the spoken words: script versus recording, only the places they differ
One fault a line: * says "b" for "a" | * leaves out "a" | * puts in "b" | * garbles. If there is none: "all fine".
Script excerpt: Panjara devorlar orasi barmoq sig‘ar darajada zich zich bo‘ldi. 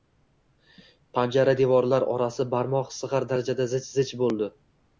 all fine